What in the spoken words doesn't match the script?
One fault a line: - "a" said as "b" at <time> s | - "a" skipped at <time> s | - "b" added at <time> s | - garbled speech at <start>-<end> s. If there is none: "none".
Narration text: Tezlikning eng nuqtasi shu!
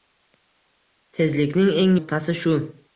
none